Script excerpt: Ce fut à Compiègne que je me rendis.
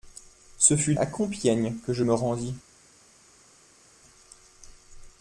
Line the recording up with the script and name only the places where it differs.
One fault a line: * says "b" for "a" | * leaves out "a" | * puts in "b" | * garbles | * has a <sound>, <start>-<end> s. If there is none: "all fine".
all fine